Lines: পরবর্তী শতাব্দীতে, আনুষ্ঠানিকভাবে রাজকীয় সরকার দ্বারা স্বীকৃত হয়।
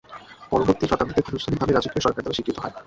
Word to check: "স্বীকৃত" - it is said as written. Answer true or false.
true